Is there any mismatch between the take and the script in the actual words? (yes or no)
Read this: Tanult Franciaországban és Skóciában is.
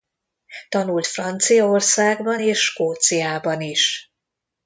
no